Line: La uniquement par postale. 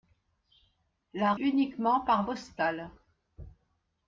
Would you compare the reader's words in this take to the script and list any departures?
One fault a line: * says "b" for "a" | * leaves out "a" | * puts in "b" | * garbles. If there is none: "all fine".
all fine